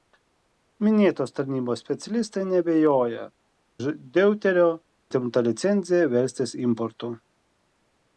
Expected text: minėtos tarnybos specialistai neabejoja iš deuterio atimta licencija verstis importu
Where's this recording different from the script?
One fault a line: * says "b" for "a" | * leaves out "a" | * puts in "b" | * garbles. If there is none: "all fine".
all fine